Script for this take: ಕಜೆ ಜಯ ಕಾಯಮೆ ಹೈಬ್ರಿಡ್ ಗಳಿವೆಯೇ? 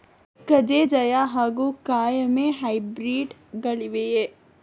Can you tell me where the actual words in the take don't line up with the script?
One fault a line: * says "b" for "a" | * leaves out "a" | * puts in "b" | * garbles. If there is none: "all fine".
* puts in "ಹಾಗೂ"